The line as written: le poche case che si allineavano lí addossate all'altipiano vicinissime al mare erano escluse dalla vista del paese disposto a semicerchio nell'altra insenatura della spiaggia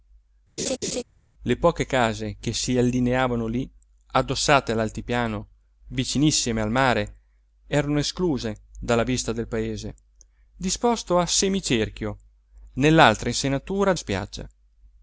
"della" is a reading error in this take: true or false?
true